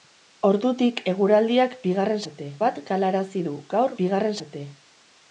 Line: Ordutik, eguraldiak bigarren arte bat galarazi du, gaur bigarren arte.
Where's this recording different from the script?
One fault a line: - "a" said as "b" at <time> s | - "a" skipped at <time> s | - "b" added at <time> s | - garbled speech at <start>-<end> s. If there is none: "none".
none